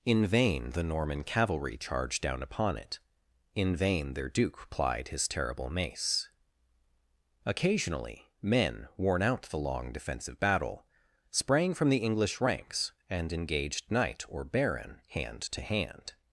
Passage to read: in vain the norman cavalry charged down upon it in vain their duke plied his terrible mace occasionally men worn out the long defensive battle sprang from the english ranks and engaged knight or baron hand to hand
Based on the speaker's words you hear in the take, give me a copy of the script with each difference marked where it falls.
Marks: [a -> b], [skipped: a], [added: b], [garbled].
in vain the norman cavalry charged down upon it in vain their duke plied his terrible mace occasionally men worn out the long defensive battle sprang from the english ranks and engaged knight or baron hand to hand